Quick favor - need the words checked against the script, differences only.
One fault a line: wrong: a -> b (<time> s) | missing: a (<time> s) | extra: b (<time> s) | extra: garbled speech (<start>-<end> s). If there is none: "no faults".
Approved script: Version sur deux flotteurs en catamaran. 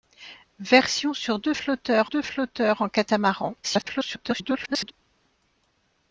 extra: deux flotteurs (2.0 s)
extra: garbled speech (3.6-4.9 s)